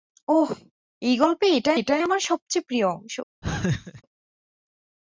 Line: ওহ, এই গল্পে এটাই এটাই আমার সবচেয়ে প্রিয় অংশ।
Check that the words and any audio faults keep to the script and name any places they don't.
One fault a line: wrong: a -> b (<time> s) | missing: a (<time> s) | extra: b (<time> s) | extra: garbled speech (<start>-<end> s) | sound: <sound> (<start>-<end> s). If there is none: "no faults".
sound: laugh (3.4-4.0 s)